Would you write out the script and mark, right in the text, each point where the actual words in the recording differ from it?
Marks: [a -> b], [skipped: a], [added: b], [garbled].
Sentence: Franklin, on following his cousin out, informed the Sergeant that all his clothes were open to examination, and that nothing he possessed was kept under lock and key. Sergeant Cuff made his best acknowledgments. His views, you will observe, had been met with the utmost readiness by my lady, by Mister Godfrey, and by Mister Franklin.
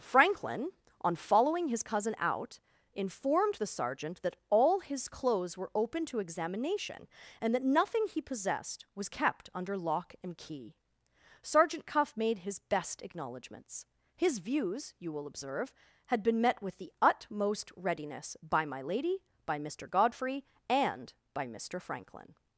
Franklin, on following his cousin out, informed the Sergeant that all his clothes were open to examination, and that nothing he possessed was kept under lock and key. Sergeant Cuff made his best acknowledgments. His views, you will observe, had been met with the utmost readiness by my lady, by Mister Godfrey, and by Mister Franklin.